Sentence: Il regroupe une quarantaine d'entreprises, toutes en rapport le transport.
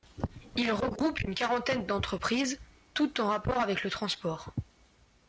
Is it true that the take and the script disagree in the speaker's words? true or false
true